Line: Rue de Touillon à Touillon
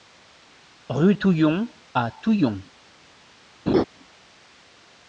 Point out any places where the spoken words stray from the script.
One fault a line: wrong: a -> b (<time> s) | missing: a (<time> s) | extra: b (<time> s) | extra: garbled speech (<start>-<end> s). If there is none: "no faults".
missing: de (1.1 s)